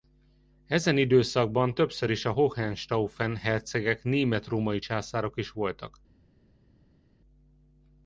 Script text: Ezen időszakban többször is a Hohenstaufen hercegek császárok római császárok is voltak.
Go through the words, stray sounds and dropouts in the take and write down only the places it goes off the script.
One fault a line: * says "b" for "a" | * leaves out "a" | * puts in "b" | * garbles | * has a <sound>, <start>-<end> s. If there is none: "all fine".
* says "német" for "császárok"